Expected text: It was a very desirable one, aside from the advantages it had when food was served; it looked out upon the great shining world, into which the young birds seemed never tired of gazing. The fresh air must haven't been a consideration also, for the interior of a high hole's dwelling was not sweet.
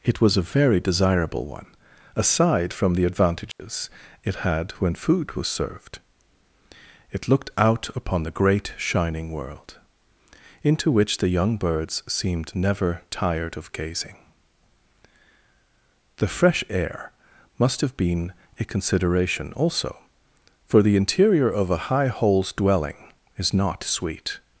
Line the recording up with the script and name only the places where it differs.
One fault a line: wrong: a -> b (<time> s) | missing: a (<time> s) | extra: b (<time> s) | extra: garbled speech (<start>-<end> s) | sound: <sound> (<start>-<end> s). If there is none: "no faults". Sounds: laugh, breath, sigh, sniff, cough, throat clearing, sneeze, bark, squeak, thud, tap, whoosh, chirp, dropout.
sound: dropout (3.5-3.6 s)
wrong: haven't -> have (17.8 s)
wrong: was -> is (23.4 s)